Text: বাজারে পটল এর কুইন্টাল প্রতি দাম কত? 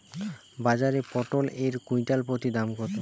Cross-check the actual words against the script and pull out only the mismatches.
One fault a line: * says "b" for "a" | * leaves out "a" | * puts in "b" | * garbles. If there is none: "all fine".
all fine